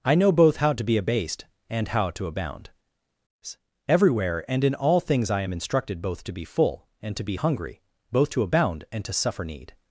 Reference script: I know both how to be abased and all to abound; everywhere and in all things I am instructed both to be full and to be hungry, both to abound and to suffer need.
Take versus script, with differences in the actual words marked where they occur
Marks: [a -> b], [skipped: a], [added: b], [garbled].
I know both how to be abased and [all -> how] to abound; everywhere and in all things I am instructed both to be full and to be hungry, both to abound and to suffer need.